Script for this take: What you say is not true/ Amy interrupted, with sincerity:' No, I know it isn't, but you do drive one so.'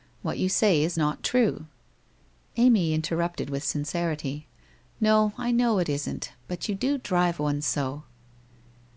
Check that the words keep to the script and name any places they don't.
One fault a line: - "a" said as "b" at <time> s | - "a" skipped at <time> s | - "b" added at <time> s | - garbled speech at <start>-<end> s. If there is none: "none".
none